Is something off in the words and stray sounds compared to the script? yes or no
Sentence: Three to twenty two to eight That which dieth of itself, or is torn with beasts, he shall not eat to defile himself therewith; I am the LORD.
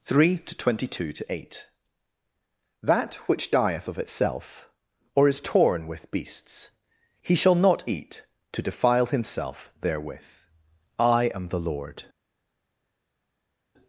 no